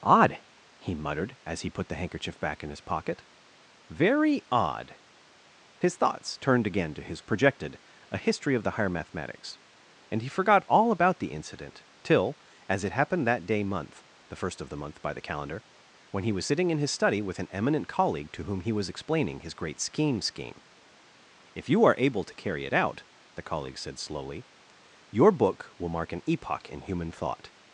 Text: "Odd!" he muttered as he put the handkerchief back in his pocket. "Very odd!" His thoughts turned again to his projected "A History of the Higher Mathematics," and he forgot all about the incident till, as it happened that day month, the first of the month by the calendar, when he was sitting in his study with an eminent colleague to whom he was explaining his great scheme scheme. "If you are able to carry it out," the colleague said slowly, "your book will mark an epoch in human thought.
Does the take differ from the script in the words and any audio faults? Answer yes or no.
no